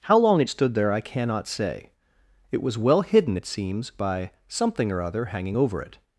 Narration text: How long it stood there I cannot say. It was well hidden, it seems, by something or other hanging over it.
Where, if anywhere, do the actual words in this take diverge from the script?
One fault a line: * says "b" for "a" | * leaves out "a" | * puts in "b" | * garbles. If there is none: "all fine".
all fine